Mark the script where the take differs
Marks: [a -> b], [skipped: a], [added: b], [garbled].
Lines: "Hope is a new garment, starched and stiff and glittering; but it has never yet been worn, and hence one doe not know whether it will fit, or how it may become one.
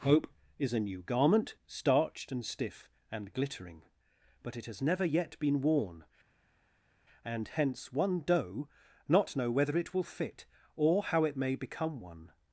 "Hope is a new garment, starched and stiff and glittering; but it has never yet been worn, and hence one doe not know whether it will fit, or how it may become one.